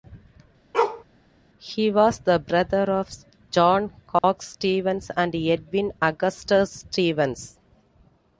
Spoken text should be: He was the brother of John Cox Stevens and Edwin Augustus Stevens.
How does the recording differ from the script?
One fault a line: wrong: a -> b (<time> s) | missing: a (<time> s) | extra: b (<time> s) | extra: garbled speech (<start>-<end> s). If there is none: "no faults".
no faults